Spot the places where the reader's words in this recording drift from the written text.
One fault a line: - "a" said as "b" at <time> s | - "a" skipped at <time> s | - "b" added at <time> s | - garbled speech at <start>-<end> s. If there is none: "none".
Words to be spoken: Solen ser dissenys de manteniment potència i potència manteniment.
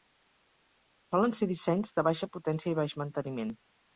- "manteniment" said as "baixa" at 2.1 s
- "potència" said as "baix" at 2.8 s